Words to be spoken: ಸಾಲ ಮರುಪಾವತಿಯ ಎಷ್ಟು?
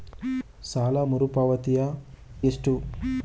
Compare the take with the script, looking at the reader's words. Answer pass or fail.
pass